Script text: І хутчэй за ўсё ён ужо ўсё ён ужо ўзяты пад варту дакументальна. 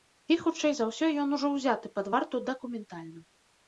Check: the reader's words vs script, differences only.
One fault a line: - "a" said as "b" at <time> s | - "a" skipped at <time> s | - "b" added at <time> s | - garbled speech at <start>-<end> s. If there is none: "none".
- "ўсё ён ужо" skipped at 1.5 s